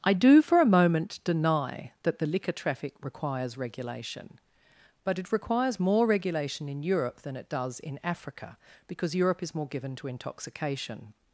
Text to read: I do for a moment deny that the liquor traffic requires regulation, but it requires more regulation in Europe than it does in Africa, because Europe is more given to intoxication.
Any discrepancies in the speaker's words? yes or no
no